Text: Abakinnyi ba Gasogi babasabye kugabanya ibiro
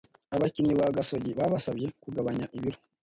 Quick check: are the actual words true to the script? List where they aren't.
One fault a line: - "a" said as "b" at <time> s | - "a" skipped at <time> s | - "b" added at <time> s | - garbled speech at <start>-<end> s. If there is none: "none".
none